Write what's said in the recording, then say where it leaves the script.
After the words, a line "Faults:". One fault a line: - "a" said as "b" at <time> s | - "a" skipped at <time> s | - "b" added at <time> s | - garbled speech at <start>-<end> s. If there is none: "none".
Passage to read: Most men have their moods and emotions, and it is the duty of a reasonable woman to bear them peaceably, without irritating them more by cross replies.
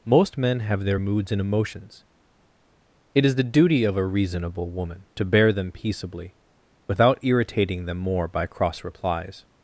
Most men have their moods and emotions, it is the duty of a reasonable woman to bear them peaceably, without irritating them more by cross replies.
Faults:
- "and" skipped at 2.0 s